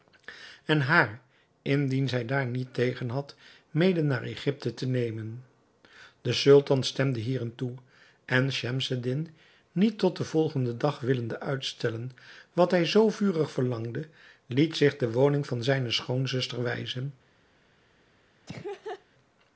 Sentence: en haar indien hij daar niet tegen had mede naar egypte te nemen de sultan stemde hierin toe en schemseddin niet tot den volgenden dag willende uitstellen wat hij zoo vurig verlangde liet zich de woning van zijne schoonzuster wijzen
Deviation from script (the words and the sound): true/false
true